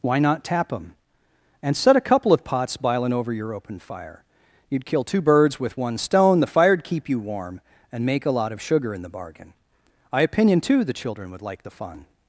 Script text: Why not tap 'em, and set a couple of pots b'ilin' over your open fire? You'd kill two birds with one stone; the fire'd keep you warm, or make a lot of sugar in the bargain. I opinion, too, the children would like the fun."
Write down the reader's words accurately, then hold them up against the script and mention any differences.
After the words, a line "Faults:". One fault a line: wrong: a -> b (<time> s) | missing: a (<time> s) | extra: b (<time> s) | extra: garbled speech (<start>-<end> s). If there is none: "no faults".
Why not tap 'em, and set a couple of pots b'ilin' over your open fire? You'd kill two birds with one stone; the fire'd keep you warm, and make a lot of sugar in the bargain. I opinion, too, the children would like the fun."
Faults:
wrong: or -> and (7.9 s)